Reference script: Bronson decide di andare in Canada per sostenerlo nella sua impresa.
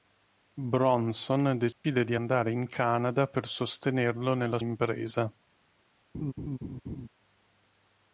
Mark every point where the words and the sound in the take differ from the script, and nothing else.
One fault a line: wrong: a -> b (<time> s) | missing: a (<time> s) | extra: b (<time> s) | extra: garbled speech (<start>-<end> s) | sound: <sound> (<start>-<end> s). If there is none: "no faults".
sound: dropout (1.7-1.8 s)
missing: sua (4.6 s)
sound: laugh (6.1-7.1 s)